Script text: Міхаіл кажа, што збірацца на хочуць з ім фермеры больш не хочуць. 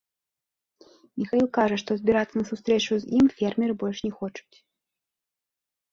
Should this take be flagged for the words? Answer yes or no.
yes